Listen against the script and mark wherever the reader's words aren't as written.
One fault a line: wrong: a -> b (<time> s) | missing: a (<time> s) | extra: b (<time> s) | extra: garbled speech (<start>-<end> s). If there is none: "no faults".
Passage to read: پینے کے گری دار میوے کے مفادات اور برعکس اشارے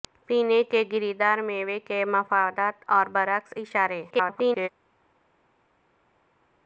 extra: garbled speech (4.1-4.7 s)